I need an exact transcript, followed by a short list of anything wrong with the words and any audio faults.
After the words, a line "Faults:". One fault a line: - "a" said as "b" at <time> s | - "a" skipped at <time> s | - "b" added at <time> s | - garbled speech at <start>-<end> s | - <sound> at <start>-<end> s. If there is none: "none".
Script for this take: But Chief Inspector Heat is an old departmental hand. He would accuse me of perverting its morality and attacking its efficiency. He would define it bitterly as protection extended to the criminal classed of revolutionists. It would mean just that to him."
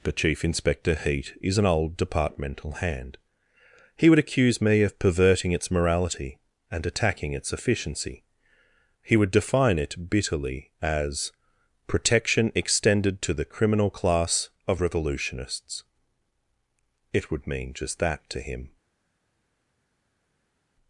But Chief Inspector Heat is an old departmental hand. He would accuse me of perverting its morality and attacking its efficiency. He would define it bitterly as protection extended to the criminal class of revolutionists. It would mean just that to him."
Faults:
- "classed" said as "class" at 13.9 s